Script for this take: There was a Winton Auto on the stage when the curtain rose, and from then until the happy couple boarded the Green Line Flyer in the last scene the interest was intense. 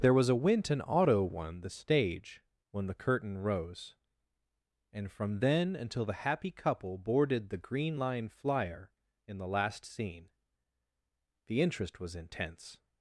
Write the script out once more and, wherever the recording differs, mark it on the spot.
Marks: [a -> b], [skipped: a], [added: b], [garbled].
There was a Winton Auto [on -> one] the stage when the curtain rose, and from then until the happy couple boarded the Green Line Flyer in the last scene the interest was intense.